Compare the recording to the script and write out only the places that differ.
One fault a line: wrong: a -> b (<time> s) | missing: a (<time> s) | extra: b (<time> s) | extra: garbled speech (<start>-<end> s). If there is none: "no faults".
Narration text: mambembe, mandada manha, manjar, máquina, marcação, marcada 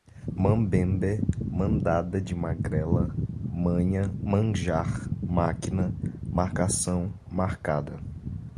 extra: de magrela (2.2 s)